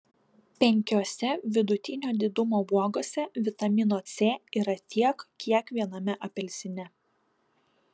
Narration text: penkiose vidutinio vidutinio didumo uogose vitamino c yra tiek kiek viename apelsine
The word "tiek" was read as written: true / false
true